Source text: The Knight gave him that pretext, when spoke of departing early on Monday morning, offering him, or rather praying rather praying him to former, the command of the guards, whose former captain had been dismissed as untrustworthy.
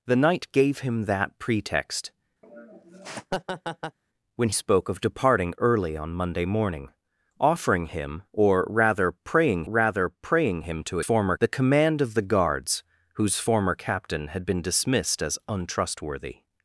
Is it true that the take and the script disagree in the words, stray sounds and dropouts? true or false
true